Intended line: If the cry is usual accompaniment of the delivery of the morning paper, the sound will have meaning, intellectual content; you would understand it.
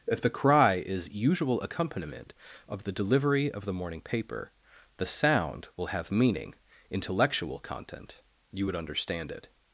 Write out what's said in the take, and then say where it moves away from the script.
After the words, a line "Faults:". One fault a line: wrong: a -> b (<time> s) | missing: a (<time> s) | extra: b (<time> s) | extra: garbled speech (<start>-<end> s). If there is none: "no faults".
If the cry is usual accompaniment of the delivery of the morning paper, the sound will have meaning, intellectual content; you would understand it.
Faults:
no faults